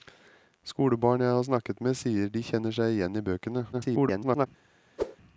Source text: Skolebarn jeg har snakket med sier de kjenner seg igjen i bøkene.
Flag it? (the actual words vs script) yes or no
yes